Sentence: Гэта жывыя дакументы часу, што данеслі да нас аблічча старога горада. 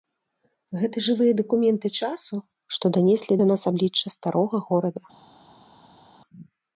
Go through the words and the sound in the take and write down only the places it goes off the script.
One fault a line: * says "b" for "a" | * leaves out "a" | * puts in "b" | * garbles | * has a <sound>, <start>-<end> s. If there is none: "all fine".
all fine